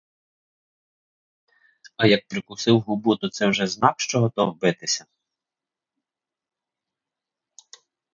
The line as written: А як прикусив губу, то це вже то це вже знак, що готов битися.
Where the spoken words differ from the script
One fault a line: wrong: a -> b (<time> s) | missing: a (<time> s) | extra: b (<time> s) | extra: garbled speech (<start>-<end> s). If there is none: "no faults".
missing: то це вже (3.7 s)